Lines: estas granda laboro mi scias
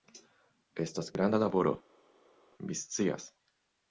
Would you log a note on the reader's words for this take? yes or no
no